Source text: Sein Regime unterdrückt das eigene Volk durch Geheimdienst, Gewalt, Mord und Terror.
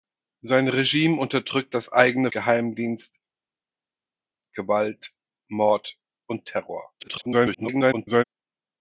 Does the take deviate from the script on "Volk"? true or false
true